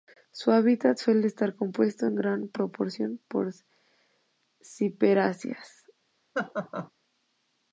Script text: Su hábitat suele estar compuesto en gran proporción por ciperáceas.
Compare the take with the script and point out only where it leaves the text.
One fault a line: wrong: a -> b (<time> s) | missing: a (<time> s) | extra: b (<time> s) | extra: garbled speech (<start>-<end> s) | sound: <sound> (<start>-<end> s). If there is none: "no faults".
sound: laugh (6.3-6.9 s)